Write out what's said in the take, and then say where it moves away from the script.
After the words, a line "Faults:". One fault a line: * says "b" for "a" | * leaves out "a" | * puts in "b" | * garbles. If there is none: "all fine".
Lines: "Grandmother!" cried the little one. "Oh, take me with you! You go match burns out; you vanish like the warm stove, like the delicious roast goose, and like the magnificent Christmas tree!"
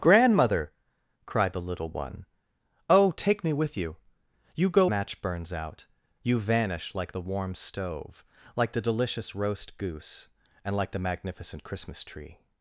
"Grandmother!" cried the little one. "Oh, take me with you! You go match burns out; you vanish like the warm stove, like the delicious roast goose, and like the magnificent Christmas tree!"
Faults:
all fine